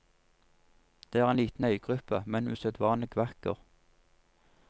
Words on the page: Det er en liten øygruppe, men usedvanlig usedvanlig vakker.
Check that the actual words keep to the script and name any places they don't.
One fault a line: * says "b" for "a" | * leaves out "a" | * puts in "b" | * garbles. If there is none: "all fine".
* leaves out "usedvanlig"